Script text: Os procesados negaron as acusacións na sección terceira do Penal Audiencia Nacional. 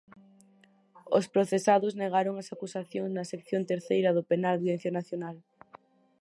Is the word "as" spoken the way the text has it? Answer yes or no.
yes